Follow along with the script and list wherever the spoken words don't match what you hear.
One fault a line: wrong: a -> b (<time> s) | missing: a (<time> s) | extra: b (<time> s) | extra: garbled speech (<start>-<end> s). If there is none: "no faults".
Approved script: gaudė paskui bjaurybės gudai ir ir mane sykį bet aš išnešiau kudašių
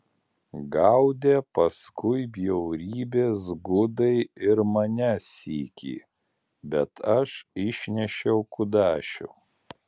missing: ir (4.6 s)